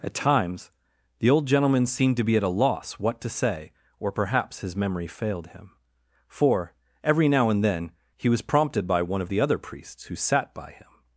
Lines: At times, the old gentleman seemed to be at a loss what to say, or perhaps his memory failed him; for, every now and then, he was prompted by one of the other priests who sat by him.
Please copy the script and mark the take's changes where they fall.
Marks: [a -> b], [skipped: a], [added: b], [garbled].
At times, the old gentleman seemed to be at a loss what to say, or perhaps his memory failed him; for, every now and then, he was prompted by one of the other priests who sat by him.